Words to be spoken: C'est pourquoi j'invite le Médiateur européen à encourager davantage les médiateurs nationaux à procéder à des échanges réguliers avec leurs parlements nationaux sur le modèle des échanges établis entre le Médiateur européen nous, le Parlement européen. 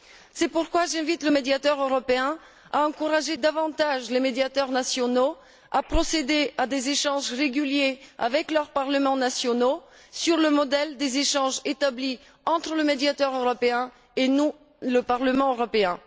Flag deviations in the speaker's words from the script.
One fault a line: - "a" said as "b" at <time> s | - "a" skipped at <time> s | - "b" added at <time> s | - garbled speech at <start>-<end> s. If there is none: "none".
- "et" added at 14.2 s